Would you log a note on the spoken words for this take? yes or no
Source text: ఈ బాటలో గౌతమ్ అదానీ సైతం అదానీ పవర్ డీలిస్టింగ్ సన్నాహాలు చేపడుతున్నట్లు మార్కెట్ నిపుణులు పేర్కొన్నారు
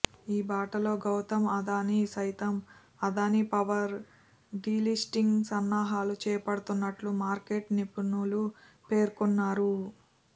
no